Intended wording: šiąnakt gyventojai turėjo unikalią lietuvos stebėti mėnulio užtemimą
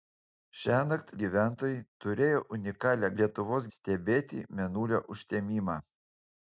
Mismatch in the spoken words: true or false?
false